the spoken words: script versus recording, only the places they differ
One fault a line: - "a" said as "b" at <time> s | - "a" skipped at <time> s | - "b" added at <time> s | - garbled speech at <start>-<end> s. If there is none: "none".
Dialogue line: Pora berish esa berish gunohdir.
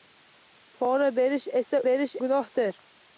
none